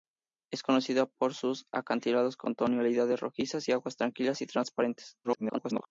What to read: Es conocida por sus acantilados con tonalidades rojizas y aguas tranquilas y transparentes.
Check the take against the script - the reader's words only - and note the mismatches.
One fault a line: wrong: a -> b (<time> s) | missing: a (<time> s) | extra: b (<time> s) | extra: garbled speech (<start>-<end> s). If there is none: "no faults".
extra: garbled speech (5.2-5.9 s)